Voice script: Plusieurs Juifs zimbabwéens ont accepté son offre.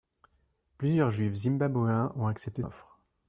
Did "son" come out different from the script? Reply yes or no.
yes